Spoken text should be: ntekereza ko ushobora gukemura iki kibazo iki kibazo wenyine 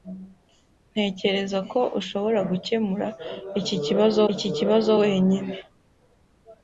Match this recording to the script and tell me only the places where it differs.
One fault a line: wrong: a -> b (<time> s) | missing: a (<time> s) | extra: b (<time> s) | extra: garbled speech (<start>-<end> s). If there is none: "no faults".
no faults